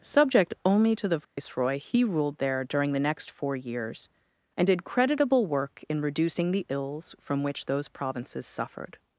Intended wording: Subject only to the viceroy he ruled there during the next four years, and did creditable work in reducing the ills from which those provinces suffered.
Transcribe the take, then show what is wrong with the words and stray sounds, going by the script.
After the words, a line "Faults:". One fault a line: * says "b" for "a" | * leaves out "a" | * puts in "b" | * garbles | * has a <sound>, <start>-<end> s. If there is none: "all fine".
Subject only to the viceroy he ruled there during the next four years, and did creditable work in reducing the ills from which those provinces suffered.
Faults:
* has a dropout, 1.2-1.4 s